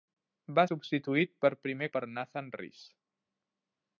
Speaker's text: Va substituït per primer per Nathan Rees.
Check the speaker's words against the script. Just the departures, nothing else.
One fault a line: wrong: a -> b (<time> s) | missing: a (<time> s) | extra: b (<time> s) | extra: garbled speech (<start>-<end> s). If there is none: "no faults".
no faults